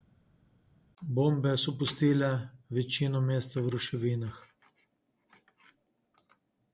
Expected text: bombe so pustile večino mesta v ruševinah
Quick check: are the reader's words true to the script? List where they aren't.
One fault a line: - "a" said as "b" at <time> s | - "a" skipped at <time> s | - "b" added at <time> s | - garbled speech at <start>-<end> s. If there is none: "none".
none